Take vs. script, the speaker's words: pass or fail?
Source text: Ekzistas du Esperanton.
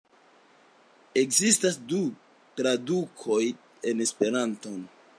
fail